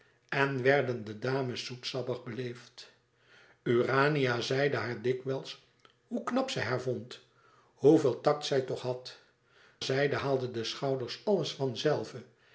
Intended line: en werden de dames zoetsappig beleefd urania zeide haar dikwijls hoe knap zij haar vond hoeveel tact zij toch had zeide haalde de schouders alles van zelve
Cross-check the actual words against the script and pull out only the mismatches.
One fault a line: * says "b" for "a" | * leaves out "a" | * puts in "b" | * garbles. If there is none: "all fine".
all fine